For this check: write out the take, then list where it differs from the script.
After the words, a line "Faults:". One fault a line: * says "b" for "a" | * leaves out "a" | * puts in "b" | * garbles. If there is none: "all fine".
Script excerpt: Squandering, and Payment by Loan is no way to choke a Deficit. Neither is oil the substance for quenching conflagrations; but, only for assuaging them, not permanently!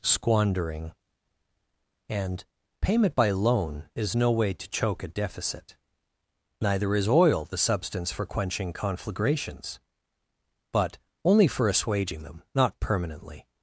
Squandering, and Payment by Loan is no way to choke a Deficit. Neither is oil the substance for quenching conflagrations; but, only for assuaging them, not permanently!
Faults:
all fine